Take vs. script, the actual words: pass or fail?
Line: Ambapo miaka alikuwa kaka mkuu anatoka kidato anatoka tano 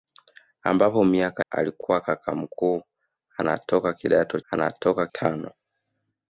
pass